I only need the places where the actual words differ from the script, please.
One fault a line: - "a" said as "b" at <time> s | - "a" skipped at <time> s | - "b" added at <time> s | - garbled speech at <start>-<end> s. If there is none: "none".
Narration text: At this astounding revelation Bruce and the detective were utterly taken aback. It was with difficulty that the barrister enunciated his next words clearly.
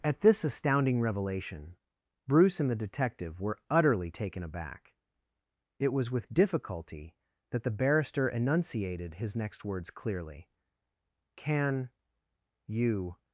- "Can you" added at 11.3 s